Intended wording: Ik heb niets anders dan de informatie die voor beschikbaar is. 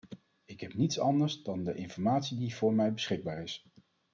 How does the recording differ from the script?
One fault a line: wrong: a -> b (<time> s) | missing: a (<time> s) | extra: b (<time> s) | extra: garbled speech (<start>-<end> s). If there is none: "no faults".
extra: mij (2.7 s)